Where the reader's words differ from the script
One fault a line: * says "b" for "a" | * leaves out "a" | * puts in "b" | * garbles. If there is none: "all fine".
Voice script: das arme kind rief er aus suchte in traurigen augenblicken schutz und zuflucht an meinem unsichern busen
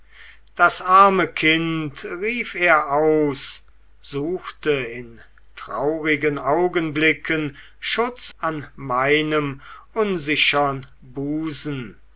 * leaves out "und zuflucht"